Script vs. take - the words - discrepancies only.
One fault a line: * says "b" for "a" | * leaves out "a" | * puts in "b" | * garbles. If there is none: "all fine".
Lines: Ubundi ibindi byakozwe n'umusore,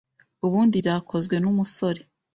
* leaves out "ibindi"